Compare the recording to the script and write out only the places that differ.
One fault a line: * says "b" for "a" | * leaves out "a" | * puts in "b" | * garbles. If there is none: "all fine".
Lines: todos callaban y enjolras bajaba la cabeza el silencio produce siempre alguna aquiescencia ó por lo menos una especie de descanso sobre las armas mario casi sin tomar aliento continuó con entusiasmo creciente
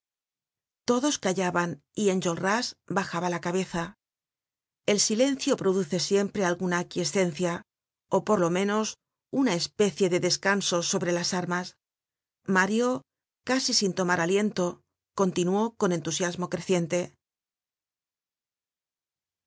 all fine